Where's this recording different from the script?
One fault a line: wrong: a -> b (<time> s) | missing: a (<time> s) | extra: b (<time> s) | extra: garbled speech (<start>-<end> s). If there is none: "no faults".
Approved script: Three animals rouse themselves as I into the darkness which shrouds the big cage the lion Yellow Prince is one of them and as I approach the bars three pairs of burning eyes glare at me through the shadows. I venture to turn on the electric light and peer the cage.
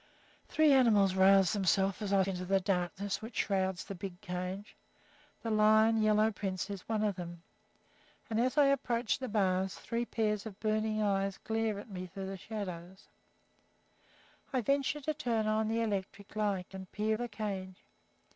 no faults